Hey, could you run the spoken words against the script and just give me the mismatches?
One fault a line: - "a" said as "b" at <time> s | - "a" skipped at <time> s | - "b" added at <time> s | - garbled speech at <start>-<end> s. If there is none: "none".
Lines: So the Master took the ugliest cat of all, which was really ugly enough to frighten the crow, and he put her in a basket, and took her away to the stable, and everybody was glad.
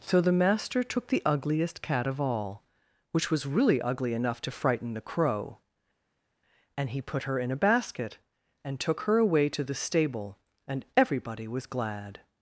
none